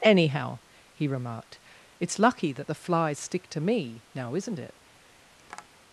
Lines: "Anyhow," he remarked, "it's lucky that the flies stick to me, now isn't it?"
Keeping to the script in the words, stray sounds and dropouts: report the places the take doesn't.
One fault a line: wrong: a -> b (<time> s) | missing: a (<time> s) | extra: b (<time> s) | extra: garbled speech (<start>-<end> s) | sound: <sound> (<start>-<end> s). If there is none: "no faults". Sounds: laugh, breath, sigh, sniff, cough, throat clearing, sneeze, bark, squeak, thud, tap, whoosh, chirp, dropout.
sound: tap (5.4-5.7 s)